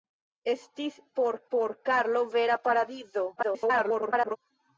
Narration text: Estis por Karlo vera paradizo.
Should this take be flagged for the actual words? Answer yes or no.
yes